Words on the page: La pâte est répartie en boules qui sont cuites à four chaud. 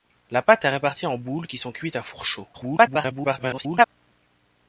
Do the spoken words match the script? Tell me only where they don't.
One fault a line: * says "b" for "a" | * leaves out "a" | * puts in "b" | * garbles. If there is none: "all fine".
* garbles